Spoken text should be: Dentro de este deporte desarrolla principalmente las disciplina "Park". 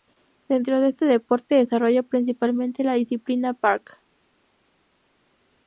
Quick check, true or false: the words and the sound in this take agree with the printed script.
false